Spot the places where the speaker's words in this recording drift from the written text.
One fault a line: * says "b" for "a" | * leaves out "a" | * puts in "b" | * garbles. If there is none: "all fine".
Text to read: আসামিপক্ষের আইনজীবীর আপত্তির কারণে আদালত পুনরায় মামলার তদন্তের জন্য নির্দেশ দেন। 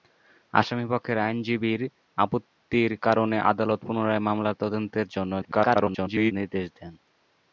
* garbles